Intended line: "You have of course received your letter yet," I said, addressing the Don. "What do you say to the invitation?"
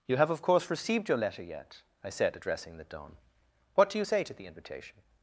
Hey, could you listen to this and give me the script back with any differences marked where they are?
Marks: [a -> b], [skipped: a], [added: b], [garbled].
"You have of course received your letter yet," I said, addressing the Don. "What do you say to the invitation?"